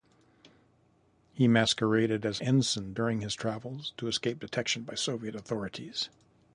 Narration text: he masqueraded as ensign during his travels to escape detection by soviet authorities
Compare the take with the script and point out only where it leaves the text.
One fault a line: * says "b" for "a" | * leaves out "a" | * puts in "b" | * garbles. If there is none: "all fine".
all fine